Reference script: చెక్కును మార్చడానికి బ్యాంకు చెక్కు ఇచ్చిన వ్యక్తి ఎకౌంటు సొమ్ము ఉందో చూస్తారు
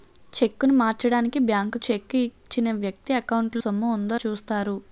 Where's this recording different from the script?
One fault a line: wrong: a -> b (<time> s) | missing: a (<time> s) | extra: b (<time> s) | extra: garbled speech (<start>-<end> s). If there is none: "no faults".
no faults